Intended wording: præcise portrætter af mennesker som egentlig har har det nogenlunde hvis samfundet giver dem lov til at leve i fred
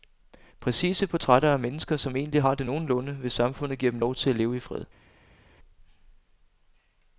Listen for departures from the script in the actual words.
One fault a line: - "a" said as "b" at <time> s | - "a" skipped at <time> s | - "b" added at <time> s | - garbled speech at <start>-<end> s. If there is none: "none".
- "har" skipped at 2.5 s